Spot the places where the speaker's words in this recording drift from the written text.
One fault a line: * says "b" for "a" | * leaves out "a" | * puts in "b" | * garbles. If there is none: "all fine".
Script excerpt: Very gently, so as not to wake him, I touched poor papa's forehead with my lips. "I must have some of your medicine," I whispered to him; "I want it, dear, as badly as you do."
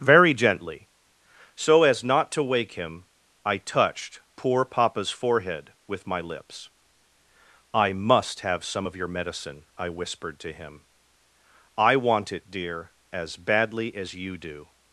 all fine